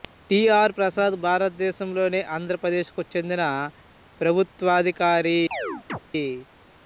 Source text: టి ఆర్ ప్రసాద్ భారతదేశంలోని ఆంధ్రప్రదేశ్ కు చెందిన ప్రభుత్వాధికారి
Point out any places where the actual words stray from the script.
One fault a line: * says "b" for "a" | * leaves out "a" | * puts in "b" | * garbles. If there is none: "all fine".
all fine